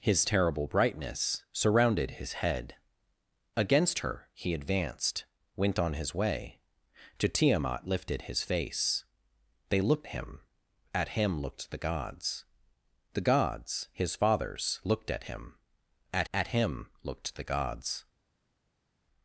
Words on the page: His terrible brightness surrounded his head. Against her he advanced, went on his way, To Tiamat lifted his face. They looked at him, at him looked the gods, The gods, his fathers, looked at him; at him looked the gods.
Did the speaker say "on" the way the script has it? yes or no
yes